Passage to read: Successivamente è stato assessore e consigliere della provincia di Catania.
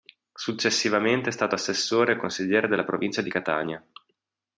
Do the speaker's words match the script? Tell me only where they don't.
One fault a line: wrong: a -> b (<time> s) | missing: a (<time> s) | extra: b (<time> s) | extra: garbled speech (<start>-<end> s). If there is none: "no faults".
no faults